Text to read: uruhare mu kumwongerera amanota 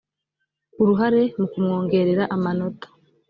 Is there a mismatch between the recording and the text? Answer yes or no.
no